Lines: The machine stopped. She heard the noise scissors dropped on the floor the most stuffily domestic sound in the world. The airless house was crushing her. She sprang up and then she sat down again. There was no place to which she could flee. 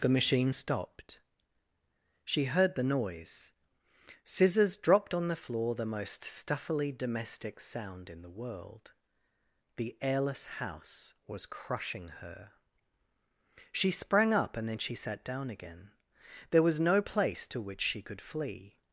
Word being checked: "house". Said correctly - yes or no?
yes